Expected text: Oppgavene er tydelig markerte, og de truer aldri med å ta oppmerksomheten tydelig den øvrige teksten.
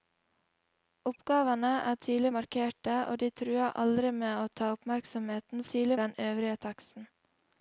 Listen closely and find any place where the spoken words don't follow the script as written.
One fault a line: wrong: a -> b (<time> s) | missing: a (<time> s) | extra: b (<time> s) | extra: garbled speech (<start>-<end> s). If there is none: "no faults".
no faults